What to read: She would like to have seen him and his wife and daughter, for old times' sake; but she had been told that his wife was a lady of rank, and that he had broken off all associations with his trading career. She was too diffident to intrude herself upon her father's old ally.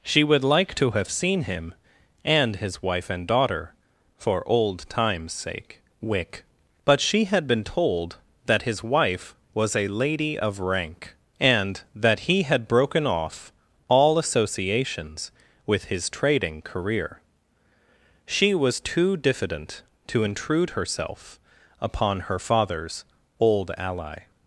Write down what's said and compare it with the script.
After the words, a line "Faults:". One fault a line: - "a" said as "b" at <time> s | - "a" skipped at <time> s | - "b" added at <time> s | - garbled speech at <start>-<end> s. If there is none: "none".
She would like to have seen him and his wife and daughter, for old times' sake; wick but she had been told that his wife was a lady of rank, and that he had broken off all associations with his trading career. She was too diffident to intrude herself upon her father's old ally.
Faults:
- "wick" added at 6.0 s